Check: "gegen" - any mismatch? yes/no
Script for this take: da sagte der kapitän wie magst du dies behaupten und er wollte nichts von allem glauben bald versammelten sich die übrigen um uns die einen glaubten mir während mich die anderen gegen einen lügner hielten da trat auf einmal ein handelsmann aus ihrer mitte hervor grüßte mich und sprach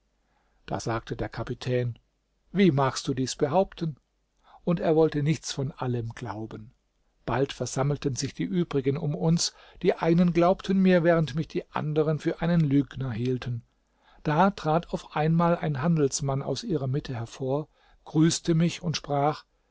yes